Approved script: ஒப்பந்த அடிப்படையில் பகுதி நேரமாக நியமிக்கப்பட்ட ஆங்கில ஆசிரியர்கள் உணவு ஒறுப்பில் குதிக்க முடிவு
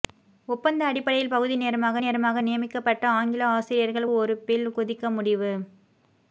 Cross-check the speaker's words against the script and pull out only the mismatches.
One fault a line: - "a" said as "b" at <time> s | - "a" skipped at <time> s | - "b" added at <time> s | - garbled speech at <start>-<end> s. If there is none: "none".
- "நேரமாக" added at 2.0 s
- "உணவு" skipped at 4.1 s